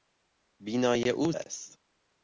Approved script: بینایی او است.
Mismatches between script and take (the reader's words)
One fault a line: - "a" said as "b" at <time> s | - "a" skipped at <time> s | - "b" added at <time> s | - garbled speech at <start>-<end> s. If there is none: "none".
none